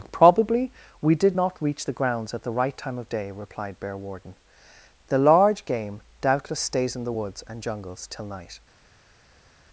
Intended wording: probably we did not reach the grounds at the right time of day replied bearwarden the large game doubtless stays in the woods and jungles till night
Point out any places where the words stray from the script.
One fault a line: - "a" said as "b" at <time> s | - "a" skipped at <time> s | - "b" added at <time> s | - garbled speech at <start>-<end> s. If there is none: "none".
none